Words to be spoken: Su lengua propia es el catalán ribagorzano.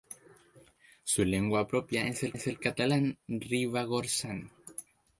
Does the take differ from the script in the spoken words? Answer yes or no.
yes